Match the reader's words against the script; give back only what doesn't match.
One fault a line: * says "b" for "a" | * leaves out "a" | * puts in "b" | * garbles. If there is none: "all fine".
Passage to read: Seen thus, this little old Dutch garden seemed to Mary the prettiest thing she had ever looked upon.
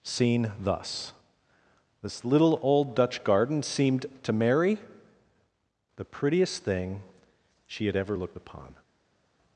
all fine